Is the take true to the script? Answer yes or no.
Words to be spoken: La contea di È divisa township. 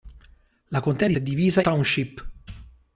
yes